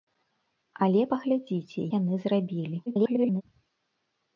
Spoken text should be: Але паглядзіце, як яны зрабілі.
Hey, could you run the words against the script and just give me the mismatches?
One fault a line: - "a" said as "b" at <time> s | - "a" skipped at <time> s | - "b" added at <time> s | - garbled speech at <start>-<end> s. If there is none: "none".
- "як" skipped at 1.8 s
- garbled speech at 2.9-3.4 s